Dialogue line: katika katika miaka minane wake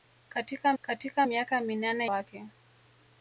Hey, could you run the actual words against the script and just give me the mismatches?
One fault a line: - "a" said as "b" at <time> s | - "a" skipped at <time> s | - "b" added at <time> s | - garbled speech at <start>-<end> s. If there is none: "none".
none